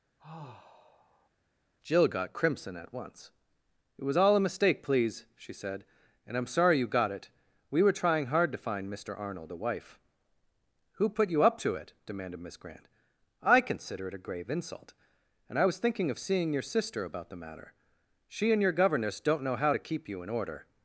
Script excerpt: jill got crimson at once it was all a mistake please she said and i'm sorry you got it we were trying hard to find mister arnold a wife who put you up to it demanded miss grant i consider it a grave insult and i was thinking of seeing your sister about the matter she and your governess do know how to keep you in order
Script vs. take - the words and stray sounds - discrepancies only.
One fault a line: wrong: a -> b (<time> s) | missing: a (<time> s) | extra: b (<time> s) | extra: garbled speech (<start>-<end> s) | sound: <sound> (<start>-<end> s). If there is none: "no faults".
sound: sigh (0.2-1.3 s)
wrong: do -> don't (19.2 s)